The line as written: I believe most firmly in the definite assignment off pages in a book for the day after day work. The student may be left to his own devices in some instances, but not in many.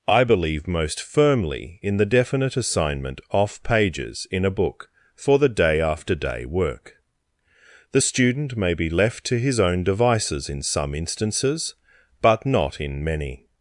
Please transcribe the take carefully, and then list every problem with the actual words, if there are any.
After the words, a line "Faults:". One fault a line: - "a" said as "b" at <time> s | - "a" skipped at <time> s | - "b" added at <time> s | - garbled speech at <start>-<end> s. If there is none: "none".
I believe most firmly in the definite assignment off pages in a book for the day after day work. The student may be left to his own devices in some instances, but not in many.
Faults:
none